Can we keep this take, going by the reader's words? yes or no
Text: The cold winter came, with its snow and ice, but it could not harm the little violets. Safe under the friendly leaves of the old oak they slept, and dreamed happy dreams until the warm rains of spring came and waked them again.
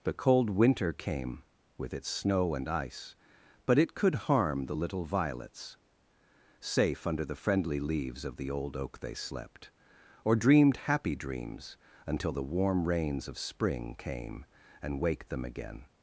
no